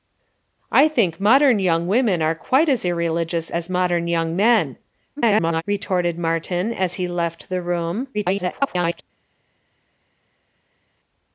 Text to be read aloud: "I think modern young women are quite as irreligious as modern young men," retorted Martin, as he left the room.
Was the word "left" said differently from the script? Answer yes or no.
no